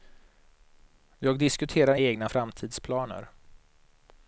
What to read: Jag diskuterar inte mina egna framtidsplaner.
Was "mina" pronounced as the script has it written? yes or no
no